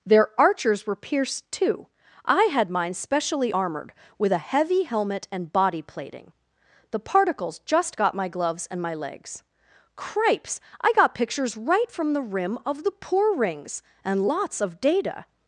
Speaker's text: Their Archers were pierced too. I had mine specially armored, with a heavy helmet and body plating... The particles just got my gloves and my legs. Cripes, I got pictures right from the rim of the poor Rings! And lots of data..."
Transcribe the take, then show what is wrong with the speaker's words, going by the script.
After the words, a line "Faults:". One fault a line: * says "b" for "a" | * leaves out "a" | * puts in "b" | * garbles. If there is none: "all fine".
Their Archers were pierced too. I had mine specially armored, with a heavy helmet and body plating... The particles just got my gloves and my legs. Cripes, I got pictures right from the rim of the poor Rings! And lots of data..."
Faults:
all fine